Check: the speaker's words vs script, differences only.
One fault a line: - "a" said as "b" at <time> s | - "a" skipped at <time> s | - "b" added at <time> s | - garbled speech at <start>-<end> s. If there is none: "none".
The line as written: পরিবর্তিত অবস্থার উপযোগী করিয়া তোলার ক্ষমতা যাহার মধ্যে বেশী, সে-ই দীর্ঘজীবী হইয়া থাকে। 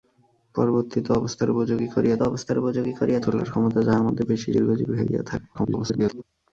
- "অবস্থার উপযোগী করিয়া" added at 2.2 s
- "সে-ই" skipped at 4.5 s
- garbled speech at 5.5-6.2 s